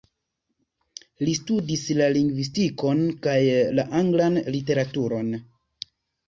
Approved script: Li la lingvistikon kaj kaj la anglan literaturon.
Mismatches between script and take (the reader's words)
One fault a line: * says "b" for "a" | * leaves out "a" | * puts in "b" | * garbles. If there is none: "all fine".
* puts in "studis"
* leaves out "kaj"